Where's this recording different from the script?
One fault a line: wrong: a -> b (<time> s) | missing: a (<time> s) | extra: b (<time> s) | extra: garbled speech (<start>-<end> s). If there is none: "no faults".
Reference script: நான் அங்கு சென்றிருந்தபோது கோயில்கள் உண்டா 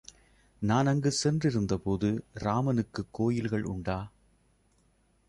extra: ராமனுக்குக் (2.3 s)